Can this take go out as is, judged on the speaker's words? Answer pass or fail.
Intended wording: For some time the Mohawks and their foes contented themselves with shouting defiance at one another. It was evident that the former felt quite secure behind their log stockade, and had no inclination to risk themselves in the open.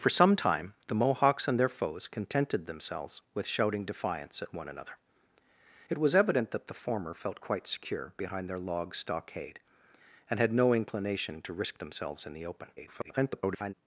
fail